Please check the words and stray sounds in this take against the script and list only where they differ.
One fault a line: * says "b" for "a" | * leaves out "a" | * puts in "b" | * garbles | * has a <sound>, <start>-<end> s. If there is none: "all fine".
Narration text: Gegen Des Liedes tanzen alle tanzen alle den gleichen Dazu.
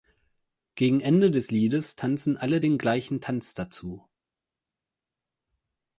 * puts in "Ende"
* leaves out "tanzen alle"
* puts in "Tanz"